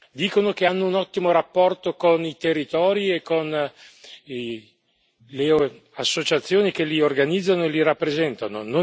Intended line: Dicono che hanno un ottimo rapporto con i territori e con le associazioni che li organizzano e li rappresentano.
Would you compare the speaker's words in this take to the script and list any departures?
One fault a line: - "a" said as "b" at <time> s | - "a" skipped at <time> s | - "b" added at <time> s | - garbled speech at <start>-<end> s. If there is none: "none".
none